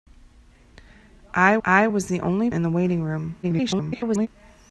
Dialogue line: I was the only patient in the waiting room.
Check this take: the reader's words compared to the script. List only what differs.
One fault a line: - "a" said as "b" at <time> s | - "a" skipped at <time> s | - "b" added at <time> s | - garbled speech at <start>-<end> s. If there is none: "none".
- "I" added at 1.6 s
- "patient" skipped at 2.5 s
- garbled speech at 3.4-4.3 s